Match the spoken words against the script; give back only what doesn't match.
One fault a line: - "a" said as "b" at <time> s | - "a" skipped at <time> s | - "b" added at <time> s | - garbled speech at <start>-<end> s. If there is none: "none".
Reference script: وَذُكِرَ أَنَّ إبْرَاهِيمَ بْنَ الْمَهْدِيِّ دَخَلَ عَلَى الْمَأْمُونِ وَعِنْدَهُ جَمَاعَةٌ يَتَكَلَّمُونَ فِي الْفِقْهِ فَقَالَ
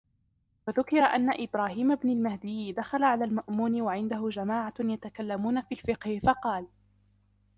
none